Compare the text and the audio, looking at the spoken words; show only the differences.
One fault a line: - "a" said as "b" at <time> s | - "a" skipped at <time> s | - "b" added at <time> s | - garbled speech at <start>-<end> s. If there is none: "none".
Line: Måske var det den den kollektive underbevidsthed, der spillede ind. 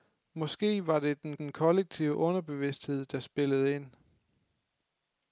none